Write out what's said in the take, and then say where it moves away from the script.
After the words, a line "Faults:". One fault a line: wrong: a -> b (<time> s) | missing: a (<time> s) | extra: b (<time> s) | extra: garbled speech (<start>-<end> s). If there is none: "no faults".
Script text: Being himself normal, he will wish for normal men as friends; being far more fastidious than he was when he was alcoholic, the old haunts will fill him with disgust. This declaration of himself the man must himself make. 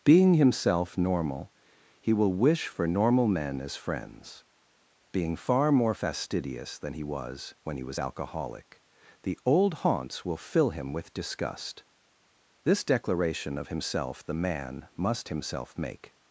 Being himself normal, he will wish for normal men as friends; being far more fastidious than he was when he was alcoholic, the old haunts will fill him with disgust. This declaration of himself the man must himself make.
Faults:
no faults